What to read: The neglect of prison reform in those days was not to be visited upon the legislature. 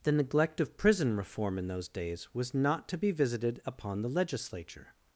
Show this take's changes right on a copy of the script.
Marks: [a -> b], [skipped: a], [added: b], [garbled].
The neglect of prison reform in those days was not to be visited upon the legislature.